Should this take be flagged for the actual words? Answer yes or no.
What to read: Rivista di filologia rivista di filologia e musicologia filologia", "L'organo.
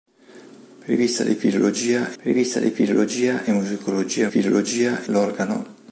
no